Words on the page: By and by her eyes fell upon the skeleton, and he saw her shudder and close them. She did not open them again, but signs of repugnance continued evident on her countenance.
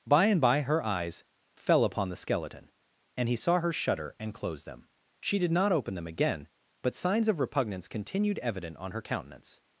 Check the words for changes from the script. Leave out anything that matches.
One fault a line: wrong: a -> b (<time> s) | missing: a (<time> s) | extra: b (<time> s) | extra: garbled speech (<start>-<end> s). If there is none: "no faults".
no faults